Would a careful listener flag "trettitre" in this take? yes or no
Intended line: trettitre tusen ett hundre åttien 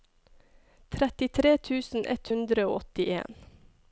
no